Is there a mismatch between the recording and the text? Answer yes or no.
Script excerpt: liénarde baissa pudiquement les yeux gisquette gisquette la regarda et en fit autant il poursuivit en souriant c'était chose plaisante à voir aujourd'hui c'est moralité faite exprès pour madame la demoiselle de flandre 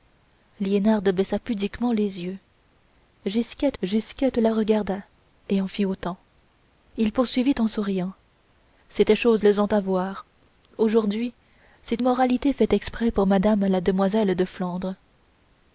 no